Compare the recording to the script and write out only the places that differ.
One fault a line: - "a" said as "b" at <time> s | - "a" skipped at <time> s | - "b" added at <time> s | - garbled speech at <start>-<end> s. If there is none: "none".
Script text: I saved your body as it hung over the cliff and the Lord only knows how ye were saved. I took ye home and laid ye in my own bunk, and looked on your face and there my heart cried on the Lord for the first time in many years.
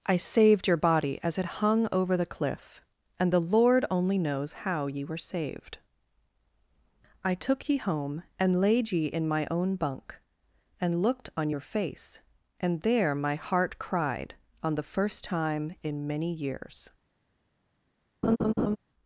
- "Lord for the" skipped at 14.8 s